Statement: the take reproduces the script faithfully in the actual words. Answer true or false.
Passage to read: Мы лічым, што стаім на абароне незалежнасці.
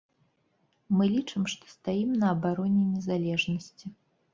true